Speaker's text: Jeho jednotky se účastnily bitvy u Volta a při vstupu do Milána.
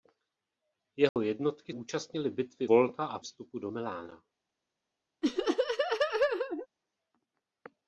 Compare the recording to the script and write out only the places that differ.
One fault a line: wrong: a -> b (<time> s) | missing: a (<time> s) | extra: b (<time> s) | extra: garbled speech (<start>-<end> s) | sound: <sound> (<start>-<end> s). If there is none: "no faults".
sound: dropout (1.1-1.2 s)
missing: se (1.7 s)
missing: u (2.7 s)
missing: při (3.2 s)
sound: laugh (5.2-6.7 s)